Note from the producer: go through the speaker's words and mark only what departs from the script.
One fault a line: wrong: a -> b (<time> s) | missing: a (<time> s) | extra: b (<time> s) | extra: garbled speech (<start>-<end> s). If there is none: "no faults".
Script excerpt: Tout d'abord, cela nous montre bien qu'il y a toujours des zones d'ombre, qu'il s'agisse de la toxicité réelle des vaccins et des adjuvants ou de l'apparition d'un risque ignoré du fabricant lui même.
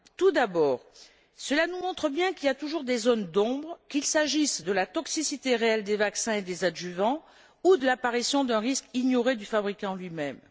no faults